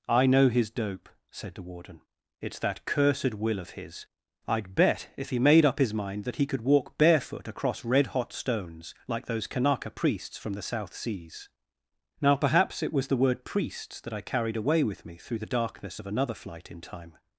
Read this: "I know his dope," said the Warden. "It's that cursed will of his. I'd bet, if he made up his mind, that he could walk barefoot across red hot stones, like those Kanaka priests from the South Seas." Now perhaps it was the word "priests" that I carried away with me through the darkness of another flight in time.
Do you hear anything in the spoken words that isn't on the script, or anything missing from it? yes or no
no